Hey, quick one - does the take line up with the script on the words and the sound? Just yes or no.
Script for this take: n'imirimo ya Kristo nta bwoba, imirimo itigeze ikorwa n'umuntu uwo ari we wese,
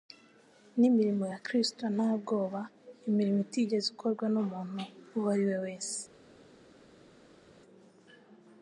yes